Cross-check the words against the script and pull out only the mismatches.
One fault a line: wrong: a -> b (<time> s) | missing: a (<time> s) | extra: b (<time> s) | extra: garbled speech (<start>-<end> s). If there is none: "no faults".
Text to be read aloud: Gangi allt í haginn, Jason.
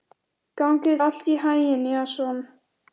no faults